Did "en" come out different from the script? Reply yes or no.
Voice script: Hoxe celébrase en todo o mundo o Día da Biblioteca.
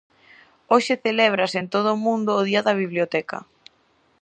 no